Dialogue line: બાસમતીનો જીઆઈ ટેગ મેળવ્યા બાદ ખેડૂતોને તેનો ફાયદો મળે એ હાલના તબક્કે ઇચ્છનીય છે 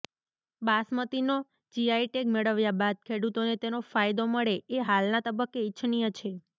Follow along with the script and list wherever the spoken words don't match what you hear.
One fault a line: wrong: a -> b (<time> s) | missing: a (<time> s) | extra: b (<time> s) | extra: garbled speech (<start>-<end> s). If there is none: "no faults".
no faults